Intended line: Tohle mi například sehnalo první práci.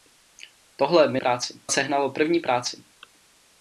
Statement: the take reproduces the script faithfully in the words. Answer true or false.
false